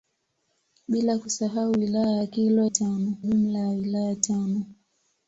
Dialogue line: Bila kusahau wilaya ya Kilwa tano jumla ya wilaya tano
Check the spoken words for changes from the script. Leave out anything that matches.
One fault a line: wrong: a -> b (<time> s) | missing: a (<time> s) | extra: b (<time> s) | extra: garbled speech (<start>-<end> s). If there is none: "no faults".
no faults